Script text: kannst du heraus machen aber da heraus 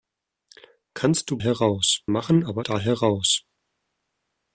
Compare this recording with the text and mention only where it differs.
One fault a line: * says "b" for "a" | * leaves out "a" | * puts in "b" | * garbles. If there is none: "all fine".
all fine